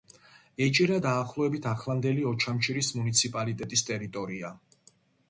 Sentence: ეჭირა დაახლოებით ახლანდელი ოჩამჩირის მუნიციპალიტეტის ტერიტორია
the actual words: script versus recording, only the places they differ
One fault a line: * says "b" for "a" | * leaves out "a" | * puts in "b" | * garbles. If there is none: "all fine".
all fine